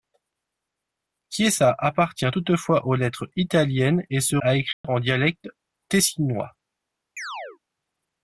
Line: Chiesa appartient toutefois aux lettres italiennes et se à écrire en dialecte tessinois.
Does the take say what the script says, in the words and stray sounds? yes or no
no